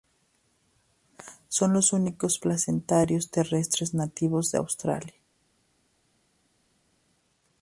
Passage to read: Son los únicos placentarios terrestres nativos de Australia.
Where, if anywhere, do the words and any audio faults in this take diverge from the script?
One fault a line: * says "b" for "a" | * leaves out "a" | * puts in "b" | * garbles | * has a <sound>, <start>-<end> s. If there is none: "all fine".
all fine